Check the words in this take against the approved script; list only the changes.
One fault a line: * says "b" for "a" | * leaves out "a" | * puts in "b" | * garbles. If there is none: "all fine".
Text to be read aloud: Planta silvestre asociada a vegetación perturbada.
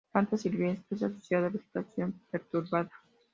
all fine